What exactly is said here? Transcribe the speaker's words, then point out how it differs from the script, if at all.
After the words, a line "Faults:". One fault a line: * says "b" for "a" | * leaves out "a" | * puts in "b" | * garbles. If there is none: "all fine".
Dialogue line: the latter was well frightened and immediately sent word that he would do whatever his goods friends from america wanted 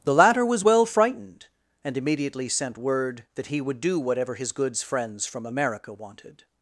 the latter was well frightened and immediately sent word that he would do whatever his goods friends from america wanted
Faults:
all fine